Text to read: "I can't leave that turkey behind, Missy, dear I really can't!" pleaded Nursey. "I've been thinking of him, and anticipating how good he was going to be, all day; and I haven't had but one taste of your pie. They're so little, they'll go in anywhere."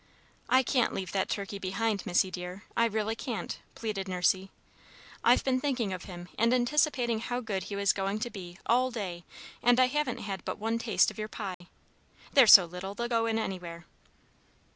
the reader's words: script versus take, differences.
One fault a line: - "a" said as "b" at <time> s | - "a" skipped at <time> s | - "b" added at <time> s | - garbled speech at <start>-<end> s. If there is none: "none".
none